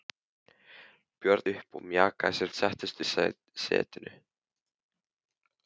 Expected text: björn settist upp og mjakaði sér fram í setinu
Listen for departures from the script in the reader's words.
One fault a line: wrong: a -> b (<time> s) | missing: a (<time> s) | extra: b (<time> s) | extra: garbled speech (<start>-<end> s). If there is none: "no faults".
missing: settist (1.4 s)
wrong: fram -> settist (2.6 s)